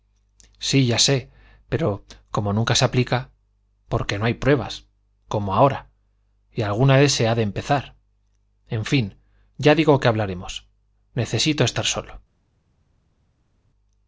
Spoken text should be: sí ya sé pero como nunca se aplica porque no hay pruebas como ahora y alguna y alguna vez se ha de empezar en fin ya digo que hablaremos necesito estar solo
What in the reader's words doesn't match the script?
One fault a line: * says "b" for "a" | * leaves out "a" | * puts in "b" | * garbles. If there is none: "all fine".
* leaves out "y alguna"